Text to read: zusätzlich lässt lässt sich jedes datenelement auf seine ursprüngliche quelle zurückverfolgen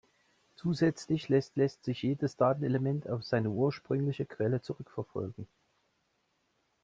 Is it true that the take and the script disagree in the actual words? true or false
false